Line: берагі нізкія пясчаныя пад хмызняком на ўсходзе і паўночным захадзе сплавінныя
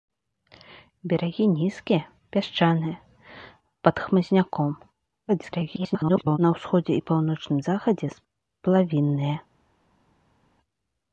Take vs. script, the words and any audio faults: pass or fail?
fail